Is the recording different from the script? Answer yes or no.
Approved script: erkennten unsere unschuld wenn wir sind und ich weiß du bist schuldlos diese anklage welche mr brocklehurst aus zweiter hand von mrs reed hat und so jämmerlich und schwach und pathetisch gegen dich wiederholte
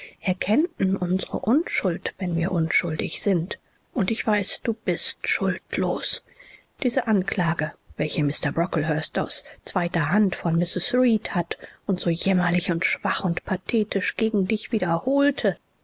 yes